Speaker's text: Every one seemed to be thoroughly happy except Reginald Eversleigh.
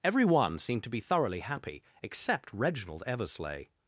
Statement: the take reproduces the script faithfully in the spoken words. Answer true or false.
true